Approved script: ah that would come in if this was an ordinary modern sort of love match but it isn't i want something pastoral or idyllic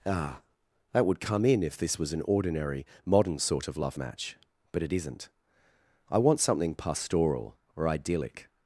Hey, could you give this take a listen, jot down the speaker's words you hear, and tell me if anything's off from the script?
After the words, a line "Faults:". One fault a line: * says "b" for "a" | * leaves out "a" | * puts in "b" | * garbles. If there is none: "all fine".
ah that would come in if this was an ordinary modern sort of love match but it isn't i want something pastoral or idyllic
Faults:
all fine